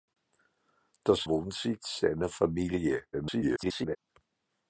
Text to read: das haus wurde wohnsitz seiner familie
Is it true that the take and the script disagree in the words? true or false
true